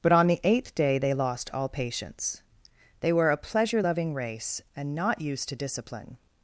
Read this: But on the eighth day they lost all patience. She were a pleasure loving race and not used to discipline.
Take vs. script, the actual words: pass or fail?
fail